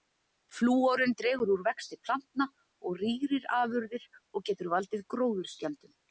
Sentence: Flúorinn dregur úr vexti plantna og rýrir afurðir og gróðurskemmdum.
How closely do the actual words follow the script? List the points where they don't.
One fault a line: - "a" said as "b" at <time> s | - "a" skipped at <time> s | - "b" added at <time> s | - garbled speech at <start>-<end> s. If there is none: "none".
- "getur valdið" added at 4.5 s